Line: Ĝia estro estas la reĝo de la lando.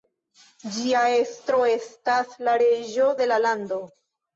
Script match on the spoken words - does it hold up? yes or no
yes